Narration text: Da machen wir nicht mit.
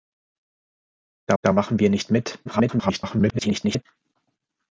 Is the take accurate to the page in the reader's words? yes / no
no